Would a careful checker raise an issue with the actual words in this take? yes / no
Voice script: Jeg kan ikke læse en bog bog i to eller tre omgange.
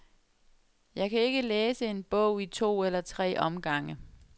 yes